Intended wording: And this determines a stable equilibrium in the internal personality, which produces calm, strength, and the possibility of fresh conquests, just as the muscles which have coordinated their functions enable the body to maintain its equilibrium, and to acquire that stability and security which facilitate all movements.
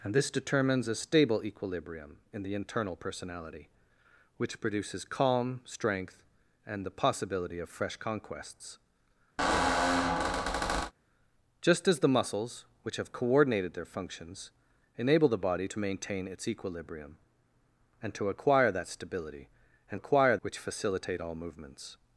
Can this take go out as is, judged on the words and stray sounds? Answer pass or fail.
fail